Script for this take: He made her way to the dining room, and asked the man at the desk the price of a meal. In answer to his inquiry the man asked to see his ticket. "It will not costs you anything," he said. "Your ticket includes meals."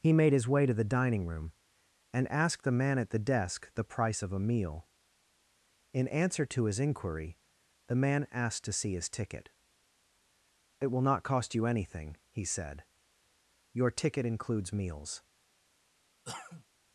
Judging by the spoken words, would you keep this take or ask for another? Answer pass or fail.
fail